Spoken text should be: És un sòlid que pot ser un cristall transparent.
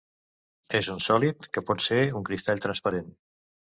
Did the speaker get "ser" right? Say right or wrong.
right